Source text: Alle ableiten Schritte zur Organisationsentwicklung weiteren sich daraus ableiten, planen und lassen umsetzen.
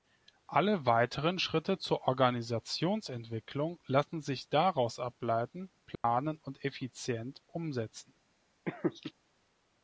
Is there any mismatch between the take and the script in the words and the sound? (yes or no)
yes